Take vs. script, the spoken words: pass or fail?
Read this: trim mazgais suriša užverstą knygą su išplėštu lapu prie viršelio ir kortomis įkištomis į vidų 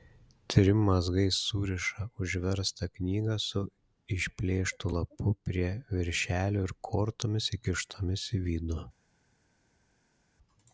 pass